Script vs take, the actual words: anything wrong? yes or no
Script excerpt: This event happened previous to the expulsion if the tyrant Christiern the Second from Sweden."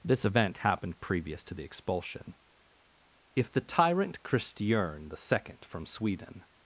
no